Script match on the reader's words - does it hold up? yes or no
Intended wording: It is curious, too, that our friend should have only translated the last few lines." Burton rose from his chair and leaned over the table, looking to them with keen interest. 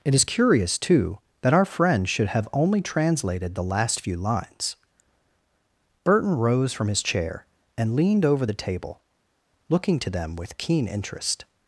yes